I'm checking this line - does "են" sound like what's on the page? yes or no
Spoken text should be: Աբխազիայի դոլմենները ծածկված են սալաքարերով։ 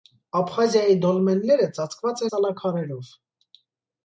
no